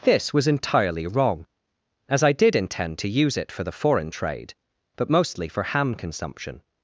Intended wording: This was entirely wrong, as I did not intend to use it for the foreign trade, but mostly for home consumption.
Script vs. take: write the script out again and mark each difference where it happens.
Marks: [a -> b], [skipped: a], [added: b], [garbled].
This was entirely wrong, as I did [skipped: not] intend to use it for the foreign trade, but mostly for [home -> ham] consumption.